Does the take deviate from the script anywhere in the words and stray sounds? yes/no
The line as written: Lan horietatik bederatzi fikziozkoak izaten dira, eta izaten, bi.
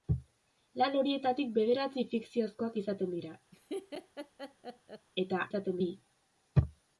yes